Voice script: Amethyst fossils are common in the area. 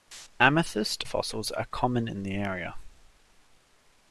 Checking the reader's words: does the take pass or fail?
pass